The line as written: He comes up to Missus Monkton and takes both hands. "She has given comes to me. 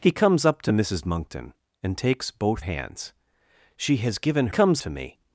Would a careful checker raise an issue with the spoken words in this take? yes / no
no